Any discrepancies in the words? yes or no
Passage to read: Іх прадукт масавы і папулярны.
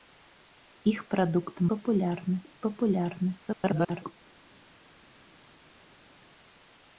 yes